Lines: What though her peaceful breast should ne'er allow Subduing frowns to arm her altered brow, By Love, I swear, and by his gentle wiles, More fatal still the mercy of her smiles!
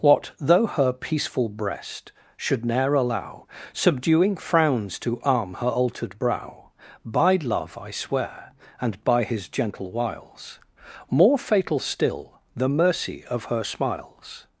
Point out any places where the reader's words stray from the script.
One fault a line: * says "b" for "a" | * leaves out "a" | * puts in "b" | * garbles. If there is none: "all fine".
all fine